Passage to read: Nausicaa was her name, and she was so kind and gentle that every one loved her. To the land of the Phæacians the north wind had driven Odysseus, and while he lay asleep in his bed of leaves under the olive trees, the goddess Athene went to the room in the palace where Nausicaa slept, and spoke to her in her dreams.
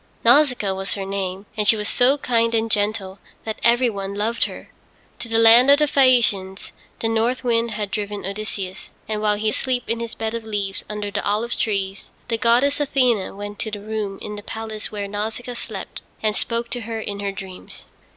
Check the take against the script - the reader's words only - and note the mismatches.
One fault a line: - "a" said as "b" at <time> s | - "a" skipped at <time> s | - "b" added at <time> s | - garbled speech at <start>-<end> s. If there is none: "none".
- "lay" skipped at 9.5 s